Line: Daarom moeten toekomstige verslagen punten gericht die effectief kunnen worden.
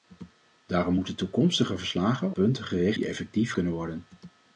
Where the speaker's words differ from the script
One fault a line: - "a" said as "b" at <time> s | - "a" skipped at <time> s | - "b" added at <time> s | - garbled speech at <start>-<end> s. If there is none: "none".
none